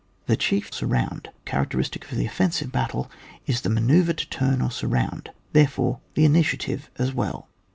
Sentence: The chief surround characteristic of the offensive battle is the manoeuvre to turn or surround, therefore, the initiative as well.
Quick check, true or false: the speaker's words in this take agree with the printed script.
true